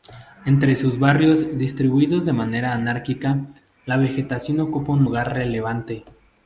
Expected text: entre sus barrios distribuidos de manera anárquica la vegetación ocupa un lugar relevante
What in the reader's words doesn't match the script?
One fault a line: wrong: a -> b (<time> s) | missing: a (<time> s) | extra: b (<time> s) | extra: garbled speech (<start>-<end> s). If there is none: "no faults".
no faults